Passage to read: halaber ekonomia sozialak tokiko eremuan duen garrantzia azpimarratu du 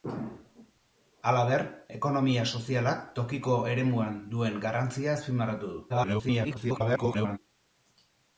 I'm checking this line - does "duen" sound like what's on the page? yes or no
yes